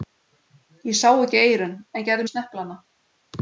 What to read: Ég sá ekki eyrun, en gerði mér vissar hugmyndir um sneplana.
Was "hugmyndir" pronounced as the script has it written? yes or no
no